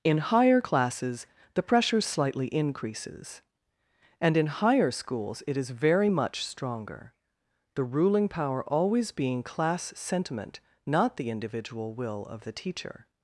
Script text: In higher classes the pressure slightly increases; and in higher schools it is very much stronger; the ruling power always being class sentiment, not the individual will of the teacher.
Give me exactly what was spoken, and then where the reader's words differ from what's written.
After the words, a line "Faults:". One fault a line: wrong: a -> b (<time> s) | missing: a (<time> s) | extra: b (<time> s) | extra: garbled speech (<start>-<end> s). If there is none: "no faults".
In higher classes the pressure slightly increases; and in higher schools it is very much stronger; the ruling power always being class sentiment, not the individual will of the teacher.
Faults:
no faults